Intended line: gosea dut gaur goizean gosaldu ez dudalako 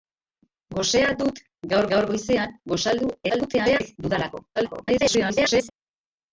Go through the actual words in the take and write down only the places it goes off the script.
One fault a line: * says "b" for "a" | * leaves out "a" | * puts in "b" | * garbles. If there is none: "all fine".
* puts in "gaur"
* garbles
* garbles